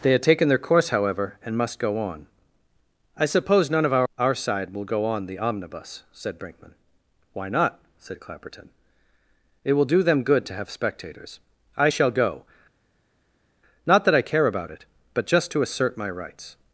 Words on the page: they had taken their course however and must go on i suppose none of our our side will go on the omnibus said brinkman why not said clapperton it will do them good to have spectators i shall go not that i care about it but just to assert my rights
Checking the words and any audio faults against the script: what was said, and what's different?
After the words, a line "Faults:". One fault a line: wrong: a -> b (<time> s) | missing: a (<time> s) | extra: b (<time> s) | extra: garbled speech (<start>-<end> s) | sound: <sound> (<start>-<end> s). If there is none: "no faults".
they had taken their course however and must go on i suppose none of our our side will go on the omnibus said brinkman why not said clapperton it will do them good to have spectators i shall go not that i care about it but just to assert my rights
Faults:
no faults